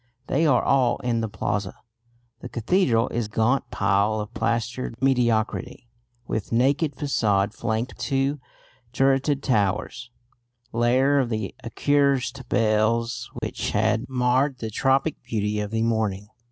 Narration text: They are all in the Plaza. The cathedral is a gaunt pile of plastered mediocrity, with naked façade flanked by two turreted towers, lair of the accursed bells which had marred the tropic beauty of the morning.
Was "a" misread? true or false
true